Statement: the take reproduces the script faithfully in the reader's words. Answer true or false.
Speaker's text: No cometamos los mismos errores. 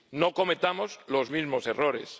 true